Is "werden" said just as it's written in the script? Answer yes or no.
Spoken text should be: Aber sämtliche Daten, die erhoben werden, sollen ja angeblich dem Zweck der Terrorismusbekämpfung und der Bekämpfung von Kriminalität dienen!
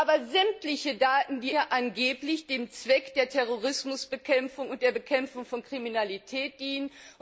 no